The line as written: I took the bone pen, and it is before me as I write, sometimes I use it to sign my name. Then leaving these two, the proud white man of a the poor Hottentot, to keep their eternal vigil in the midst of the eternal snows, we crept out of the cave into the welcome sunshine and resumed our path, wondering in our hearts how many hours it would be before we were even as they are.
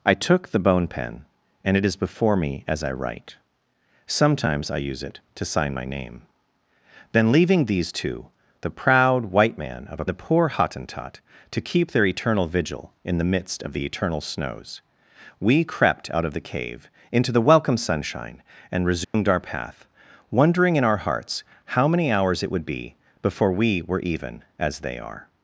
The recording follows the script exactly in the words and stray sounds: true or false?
false